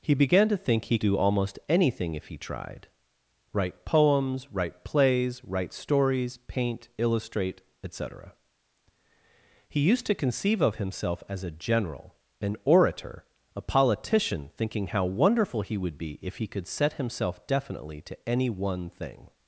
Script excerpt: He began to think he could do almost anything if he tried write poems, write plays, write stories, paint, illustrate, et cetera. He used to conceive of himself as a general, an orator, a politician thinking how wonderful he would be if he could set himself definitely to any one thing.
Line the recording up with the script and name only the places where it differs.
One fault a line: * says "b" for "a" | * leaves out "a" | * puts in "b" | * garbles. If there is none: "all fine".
* leaves out "could"